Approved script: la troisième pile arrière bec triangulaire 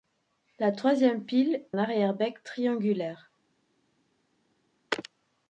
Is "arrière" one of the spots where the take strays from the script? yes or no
no